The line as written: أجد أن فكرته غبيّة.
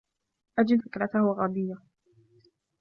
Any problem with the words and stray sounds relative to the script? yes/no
yes